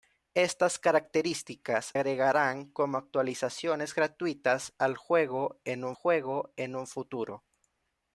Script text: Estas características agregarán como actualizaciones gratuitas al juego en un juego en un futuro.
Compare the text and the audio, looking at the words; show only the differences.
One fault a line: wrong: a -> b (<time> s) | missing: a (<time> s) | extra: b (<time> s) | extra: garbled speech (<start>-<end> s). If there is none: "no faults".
no faults